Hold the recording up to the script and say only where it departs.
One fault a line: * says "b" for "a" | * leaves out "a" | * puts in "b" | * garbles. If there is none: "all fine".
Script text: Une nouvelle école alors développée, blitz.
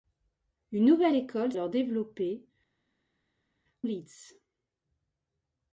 all fine